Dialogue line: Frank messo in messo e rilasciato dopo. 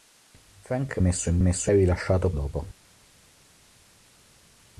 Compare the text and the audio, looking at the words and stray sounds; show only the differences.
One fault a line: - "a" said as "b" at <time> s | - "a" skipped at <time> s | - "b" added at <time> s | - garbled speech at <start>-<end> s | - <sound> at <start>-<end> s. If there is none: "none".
none